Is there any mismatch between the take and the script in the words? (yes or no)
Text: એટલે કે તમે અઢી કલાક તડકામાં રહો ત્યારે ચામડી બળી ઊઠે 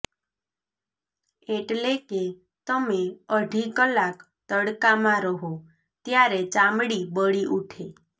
no